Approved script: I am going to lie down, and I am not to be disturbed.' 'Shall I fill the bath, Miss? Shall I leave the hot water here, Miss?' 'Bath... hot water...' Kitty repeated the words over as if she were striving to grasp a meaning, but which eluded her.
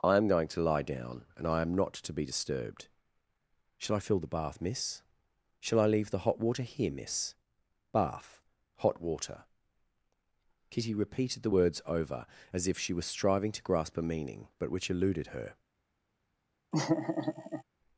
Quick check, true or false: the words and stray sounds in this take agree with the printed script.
false